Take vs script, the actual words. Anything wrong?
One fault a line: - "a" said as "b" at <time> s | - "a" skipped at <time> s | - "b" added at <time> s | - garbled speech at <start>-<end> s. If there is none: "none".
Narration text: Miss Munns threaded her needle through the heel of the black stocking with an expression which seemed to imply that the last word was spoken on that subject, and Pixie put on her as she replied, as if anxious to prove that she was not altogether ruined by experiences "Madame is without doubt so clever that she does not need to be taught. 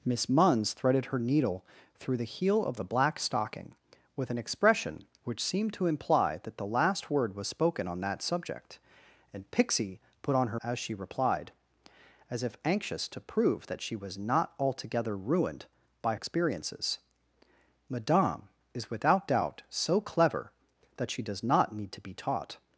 none